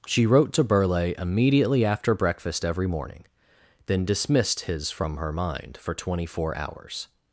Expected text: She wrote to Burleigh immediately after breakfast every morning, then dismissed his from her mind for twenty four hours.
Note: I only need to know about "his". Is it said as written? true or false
true